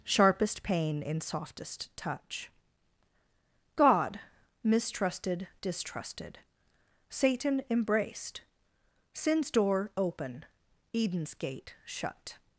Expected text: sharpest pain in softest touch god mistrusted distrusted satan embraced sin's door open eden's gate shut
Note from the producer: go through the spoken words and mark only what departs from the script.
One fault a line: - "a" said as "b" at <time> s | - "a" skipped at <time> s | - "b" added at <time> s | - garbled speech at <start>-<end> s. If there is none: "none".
none